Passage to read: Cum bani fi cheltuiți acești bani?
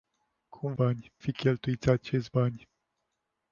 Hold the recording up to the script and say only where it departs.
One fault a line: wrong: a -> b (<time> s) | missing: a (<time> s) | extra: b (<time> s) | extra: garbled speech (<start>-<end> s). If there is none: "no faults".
no faults